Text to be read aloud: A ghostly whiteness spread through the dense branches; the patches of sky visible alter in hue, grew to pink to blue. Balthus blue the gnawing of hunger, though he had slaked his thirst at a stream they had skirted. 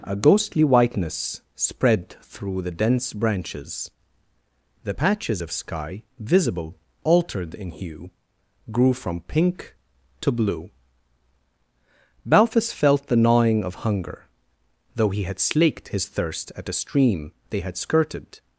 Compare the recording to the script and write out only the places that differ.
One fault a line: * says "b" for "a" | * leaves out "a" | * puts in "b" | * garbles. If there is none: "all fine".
* says "altered" for "alter"
* says "from" for "to"
* says "felt" for "blue"